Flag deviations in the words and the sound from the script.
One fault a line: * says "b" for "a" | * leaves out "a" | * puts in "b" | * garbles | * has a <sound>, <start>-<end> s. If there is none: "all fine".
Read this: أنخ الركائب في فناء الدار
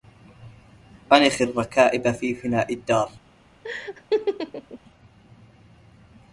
* has a laugh, 3.6-4.8 s